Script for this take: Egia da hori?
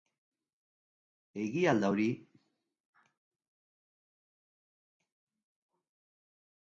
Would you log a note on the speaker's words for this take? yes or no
yes